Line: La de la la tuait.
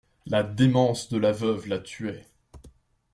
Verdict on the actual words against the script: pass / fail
fail